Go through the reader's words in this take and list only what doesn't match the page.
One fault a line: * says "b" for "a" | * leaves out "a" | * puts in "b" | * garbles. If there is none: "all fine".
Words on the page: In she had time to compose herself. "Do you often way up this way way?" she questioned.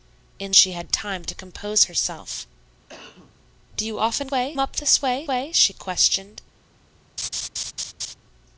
all fine